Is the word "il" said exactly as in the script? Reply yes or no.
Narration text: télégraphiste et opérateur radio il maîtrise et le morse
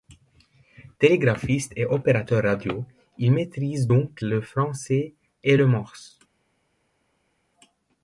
yes